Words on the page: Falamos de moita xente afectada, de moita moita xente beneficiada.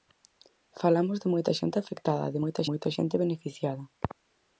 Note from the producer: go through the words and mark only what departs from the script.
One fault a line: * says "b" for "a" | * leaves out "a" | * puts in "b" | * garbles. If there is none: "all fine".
all fine